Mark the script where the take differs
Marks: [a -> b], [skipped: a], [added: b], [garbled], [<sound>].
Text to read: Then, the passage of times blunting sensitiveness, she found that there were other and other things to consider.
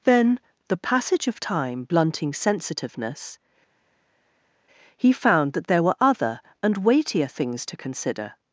Then, the passage of [times -> time] blunting sensitiveness, [she -> he] found that there were other and [other -> weightier] things to consider.